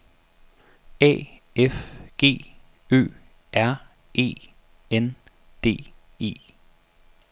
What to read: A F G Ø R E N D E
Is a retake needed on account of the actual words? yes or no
no